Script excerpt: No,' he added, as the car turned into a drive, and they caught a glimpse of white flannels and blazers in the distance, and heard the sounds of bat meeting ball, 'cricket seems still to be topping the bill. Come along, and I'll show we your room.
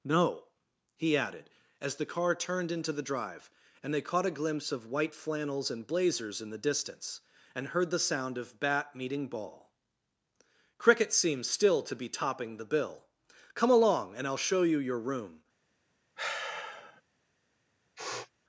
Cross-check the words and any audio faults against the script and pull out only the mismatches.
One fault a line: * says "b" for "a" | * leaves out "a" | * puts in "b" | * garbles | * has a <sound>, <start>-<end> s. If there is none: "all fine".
* says "the" for "a"
* says "sound" for "sounds"
* says "you" for "we"
* has a sigh, 16.2-17.0 s
* has a sniff, 18.0-18.3 s